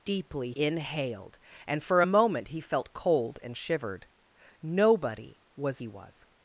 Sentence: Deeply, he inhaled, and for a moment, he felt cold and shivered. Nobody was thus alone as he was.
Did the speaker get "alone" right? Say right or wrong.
wrong